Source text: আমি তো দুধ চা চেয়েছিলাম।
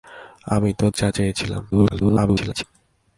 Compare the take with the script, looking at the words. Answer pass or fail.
fail